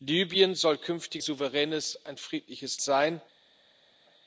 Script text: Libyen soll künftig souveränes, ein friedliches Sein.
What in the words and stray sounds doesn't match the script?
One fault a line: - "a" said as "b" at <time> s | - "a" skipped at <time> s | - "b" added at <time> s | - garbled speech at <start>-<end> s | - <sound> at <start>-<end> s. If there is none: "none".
none